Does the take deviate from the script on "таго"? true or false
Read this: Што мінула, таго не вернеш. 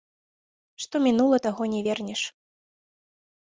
false